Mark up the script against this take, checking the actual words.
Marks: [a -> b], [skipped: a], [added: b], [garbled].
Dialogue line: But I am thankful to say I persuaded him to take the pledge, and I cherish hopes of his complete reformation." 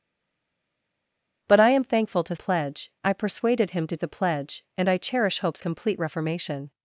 But I am thankful to [say -> pledge] I persuaded him to [skipped: take] the pledge, and I cherish hopes [skipped: of his] complete reformation."